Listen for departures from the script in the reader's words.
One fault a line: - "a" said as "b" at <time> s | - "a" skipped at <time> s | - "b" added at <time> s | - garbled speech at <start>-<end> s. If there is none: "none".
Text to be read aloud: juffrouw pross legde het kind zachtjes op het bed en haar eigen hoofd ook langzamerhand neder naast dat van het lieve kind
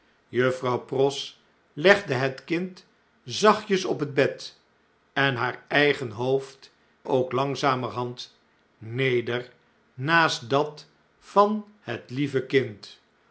none